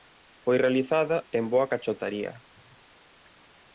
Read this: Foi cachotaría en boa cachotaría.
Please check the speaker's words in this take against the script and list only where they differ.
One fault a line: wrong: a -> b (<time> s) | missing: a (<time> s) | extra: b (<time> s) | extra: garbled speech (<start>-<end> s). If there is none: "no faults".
wrong: cachotaría -> realizada (0.6 s)